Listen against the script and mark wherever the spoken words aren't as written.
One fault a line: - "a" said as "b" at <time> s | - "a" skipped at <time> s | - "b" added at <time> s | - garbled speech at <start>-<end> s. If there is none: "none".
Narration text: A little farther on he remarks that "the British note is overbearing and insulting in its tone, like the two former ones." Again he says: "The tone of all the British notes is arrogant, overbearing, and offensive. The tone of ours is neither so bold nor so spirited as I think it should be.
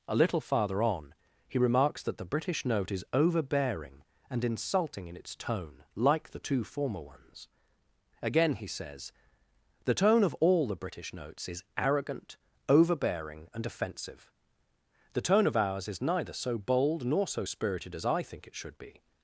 none